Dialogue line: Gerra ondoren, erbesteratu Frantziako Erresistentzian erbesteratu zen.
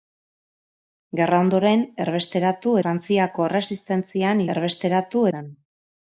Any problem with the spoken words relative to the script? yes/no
no